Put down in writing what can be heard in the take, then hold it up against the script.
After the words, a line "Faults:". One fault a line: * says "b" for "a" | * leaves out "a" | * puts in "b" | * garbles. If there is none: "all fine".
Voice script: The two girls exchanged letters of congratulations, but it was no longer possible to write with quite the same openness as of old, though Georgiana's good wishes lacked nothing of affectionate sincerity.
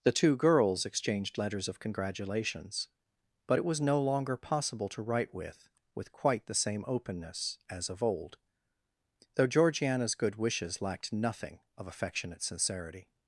The two girls exchanged letters of congratulations, but it was no longer possible to write with with quite the same openness as of old, though Georgiana's good wishes lacked nothing of affectionate sincerity.
Faults:
* puts in "with"